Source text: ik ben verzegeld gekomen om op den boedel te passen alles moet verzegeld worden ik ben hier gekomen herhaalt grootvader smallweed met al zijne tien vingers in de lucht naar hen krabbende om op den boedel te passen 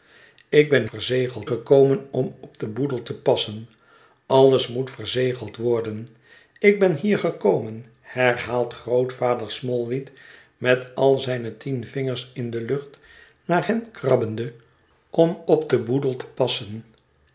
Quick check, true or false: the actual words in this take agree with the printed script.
true